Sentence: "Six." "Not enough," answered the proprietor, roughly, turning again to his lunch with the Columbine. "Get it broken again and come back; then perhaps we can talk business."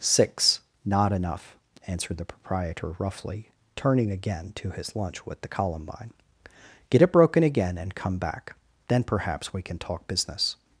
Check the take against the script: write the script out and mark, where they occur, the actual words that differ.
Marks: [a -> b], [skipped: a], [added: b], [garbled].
"Six." "Not enough," answered the proprietor, roughly, turning again to his lunch with the Columbine. "Get it broken again and come back; then perhaps we can talk business."